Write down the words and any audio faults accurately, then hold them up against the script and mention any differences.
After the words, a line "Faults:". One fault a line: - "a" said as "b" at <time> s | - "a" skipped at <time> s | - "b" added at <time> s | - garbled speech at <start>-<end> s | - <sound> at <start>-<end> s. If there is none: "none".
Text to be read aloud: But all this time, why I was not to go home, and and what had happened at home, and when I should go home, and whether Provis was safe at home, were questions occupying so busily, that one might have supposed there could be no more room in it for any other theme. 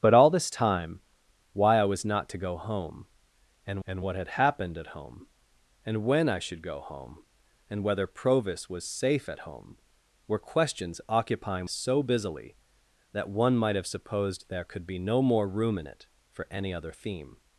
But all this time, why I was not to go home, and and what had happened at home, and when I should go home, and whether Provis was safe at home, were questions occupying so busily, that one might have supposed there could be no more room in it for any other theme.
Faults:
none